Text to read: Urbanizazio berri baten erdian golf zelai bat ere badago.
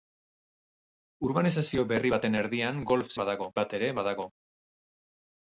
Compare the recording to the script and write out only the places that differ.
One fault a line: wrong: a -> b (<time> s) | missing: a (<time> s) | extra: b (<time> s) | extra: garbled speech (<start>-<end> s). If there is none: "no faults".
wrong: zelai -> badago (3.2 s)